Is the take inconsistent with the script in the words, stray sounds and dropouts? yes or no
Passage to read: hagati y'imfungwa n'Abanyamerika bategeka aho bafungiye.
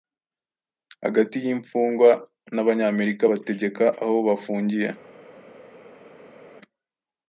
no